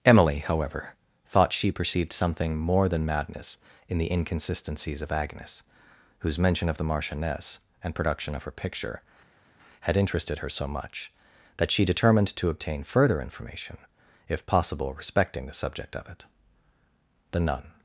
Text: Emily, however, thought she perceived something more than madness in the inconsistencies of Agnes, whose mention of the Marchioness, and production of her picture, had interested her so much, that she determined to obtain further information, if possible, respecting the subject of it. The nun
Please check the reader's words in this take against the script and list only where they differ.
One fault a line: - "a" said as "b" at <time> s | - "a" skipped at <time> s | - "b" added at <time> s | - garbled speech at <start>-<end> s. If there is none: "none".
none